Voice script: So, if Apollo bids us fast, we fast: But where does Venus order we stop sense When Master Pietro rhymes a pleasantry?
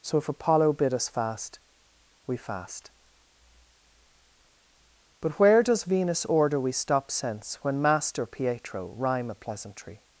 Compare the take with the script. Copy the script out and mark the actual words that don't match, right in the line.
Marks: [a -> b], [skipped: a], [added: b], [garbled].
So, if Apollo [bids -> bid] us fast, we fast: But where does Venus order we stop sense When Master Pietro [rhymes -> rhyme] a pleasantry?